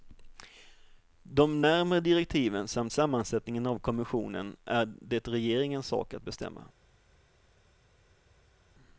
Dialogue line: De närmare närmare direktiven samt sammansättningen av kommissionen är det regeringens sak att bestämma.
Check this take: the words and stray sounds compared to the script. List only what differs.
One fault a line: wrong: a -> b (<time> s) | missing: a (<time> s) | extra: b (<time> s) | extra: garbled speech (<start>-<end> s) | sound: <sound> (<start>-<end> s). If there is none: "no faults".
missing: närmare (2.0 s)